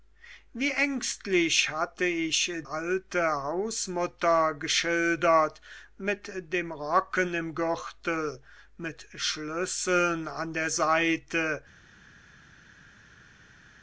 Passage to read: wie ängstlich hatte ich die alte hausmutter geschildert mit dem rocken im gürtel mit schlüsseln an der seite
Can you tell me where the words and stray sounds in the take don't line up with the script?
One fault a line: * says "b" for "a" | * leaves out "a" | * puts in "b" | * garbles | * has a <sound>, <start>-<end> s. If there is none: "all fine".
* leaves out "die"